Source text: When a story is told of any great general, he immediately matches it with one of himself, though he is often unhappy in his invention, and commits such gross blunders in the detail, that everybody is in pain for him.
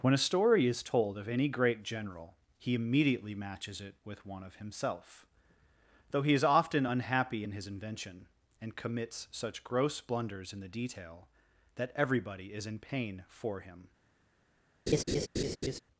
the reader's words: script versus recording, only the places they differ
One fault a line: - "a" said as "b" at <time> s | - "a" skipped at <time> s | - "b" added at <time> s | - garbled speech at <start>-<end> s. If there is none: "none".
none